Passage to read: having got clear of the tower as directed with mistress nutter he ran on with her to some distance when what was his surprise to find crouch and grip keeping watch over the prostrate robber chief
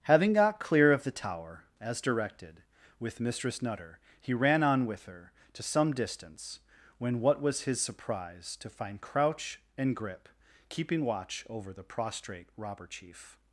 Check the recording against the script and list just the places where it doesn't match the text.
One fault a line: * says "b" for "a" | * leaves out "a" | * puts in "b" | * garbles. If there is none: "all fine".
all fine